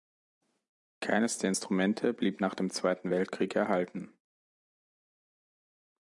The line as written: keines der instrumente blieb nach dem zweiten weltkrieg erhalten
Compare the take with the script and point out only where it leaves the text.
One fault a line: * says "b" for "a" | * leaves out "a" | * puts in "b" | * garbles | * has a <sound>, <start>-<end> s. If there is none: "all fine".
all fine